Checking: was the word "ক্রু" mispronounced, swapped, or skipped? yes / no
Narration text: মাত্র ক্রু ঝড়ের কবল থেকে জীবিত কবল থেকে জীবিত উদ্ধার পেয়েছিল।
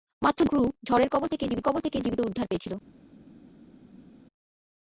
no